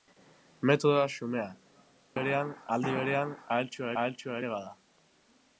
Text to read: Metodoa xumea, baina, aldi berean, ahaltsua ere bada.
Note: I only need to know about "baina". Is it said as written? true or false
false